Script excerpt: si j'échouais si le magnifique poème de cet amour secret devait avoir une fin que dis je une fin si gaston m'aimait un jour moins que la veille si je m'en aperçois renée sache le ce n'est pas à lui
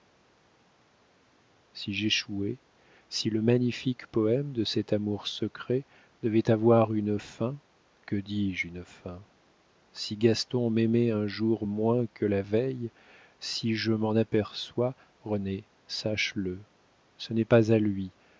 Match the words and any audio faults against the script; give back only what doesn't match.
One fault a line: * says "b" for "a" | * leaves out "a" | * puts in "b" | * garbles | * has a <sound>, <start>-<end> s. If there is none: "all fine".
all fine